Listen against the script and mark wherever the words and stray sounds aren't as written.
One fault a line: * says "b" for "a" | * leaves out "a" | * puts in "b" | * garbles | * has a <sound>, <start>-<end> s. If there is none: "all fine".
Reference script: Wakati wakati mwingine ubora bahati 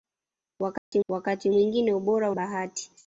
* has a dropout, 0.8-0.9 s